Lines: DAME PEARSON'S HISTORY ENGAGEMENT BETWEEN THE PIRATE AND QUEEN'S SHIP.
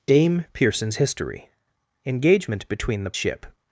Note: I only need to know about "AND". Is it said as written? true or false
false